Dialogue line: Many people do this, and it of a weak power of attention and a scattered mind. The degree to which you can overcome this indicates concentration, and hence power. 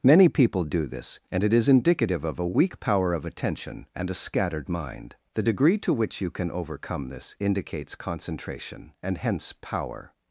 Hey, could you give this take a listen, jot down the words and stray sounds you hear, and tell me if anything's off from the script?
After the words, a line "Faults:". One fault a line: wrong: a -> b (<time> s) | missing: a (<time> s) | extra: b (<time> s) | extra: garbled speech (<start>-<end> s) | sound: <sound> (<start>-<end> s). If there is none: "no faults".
Many people do this, and it is indicative of a weak power of attention and a scattered mind. The degree to which you can overcome this indicates concentration, and hence power.
Faults:
extra: is indicative (1.5 s)